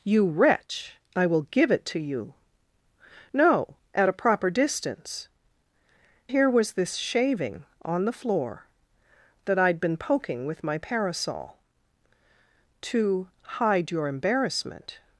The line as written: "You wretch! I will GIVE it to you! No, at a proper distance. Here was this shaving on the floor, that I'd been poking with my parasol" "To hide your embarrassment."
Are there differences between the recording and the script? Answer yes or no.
no